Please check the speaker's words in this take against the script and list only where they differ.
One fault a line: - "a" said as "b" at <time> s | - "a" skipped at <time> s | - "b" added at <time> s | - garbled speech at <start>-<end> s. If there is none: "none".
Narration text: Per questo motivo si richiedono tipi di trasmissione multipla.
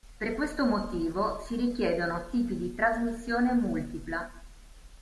none